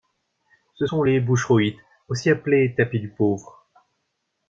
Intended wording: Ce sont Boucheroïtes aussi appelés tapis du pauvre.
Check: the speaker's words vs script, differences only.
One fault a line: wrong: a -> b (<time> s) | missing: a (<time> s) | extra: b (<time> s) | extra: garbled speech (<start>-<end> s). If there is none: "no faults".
extra: les (1.0 s)